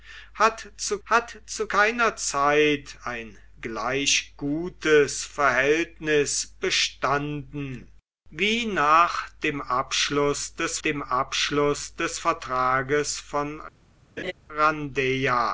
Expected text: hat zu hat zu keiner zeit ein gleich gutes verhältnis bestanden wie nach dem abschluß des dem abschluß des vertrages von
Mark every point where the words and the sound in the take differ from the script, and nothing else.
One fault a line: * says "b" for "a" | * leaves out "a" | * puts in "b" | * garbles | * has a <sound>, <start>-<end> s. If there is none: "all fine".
* has a laugh, 14.2-14.3 s